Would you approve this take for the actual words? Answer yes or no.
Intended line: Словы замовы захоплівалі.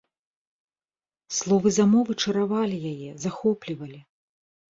no